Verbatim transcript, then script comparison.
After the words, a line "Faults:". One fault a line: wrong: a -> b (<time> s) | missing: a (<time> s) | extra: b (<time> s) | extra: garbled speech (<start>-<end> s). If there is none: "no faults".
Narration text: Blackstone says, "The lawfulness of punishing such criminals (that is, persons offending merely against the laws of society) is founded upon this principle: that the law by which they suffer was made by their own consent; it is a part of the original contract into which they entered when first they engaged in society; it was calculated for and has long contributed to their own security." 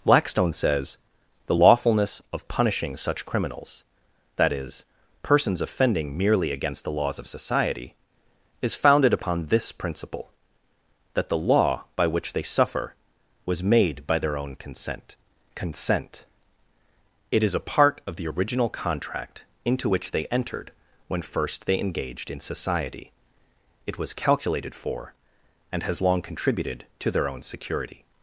Blackstone says, "The lawfulness of punishing such criminals (that is, persons offending merely against the laws of society) is founded upon this principle: that the law by which they suffer was made by their own consent consent; it is a part of the original contract into which they entered when first they engaged in society; it was calculated for and has long contributed to their own security."
Faults:
extra: consent (15.6 s)